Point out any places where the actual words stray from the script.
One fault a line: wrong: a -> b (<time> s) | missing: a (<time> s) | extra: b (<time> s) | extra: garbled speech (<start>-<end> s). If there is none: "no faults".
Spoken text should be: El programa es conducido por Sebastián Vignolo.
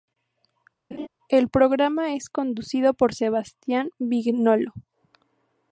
no faults